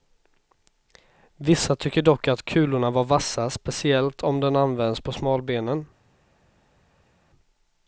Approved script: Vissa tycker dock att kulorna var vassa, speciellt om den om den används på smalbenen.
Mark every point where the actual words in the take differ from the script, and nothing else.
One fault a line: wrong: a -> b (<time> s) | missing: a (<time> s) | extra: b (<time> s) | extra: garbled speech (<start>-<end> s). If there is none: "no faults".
missing: om den (4.5 s)